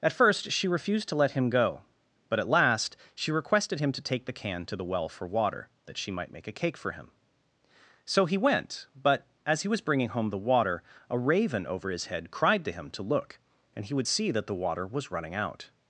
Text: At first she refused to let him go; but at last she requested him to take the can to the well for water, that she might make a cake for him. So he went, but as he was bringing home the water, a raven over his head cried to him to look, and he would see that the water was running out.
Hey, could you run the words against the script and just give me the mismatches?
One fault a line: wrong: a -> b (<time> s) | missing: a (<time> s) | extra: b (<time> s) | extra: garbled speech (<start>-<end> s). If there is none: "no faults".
no faults